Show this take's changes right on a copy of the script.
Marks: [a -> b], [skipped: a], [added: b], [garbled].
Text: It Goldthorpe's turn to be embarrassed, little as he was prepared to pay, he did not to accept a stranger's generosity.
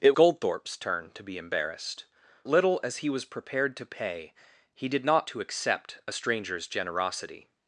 It Goldthorpe's turn to be embarrassed, little as he was prepared to pay, he did not to accept a stranger's generosity.